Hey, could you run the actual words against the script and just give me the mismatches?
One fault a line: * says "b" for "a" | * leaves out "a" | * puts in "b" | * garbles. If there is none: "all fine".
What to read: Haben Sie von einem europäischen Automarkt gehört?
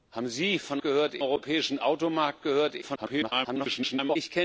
* says "gehört" for "einem"
* garbles